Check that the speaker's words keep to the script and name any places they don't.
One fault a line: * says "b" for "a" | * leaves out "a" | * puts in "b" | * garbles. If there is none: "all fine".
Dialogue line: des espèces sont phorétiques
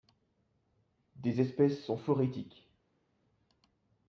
all fine